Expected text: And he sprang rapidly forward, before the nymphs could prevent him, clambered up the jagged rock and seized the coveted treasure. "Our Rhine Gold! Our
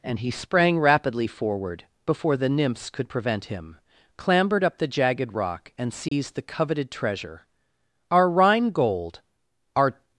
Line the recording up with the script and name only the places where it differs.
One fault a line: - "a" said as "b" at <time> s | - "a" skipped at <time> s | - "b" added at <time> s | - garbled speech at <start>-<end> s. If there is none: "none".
none